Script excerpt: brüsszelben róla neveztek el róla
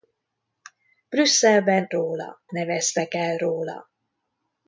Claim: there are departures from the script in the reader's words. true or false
false